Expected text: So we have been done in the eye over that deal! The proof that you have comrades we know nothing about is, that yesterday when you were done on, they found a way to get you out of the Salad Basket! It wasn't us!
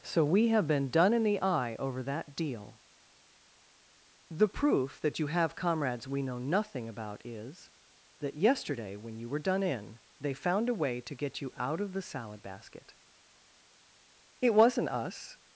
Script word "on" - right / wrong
wrong